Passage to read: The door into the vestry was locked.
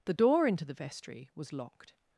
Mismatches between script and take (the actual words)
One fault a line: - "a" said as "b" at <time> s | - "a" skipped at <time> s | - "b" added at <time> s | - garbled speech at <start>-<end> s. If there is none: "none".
none